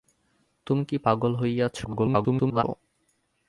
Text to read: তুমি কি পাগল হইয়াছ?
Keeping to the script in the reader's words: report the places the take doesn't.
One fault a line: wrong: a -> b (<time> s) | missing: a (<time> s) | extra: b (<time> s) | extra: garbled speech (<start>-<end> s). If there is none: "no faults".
extra: garbled speech (1.8-2.6 s)